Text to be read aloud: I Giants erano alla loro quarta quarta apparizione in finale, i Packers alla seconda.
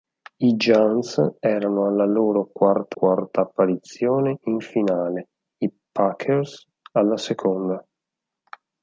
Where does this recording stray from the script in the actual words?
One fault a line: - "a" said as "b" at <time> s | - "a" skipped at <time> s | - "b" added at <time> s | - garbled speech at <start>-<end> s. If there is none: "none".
none